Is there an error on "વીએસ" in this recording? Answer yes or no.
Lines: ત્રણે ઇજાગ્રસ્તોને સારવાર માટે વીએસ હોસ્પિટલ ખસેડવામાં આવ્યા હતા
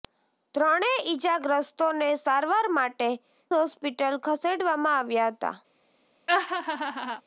yes